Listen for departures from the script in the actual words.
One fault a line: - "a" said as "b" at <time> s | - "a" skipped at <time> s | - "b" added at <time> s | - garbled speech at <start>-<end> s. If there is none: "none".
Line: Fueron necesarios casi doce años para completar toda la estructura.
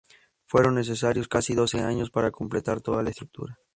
none